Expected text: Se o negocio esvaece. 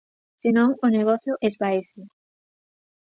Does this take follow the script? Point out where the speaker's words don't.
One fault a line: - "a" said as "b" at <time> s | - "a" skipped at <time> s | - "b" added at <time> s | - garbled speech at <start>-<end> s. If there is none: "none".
- "non" added at 0.6 s